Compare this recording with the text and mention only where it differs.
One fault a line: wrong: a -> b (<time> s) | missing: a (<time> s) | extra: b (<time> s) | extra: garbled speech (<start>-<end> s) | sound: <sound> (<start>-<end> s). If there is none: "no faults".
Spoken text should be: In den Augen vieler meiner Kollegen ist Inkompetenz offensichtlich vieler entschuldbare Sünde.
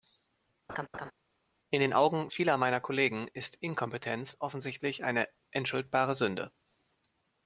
sound: laugh (0.7-1.1 s)
wrong: vieler -> eine (5.0 s)